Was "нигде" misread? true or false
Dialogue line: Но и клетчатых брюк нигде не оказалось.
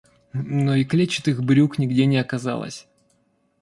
false